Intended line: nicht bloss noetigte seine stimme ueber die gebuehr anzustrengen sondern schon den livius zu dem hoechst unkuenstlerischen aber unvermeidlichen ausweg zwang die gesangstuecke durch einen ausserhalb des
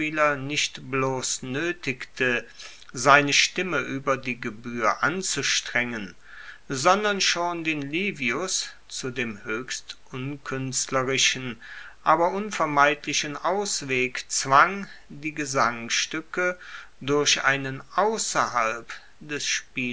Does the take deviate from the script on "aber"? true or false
false